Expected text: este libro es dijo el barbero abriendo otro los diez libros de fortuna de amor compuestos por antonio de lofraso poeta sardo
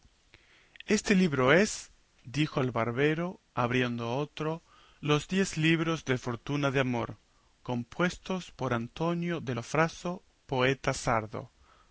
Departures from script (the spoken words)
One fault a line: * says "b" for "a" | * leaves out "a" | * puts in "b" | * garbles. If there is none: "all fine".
all fine